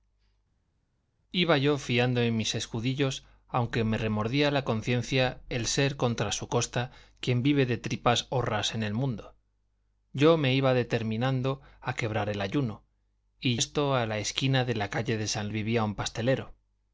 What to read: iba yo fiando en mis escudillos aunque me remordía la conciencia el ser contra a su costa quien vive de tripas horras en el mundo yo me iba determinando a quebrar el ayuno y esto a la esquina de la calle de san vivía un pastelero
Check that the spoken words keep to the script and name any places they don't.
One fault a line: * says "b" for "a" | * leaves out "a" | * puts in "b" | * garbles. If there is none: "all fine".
all fine